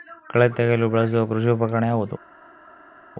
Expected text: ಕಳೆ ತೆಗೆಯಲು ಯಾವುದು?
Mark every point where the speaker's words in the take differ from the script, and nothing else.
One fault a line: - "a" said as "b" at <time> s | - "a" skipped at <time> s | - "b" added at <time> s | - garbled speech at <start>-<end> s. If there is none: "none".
- "ಬಳಸುವ ಕೃಷಿ ಉಪಕರಣ" added at 0.9 s